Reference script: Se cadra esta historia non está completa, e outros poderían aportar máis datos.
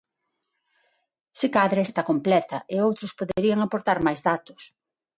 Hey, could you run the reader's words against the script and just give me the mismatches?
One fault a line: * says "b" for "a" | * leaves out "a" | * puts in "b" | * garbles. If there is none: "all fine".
* leaves out "esta historia non"